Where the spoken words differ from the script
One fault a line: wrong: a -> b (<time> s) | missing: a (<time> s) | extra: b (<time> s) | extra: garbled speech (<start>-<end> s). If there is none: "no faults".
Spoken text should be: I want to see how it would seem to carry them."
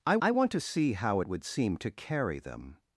extra: I (0.2 s)